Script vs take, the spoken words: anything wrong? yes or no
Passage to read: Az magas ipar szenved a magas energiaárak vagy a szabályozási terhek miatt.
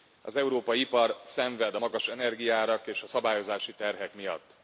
yes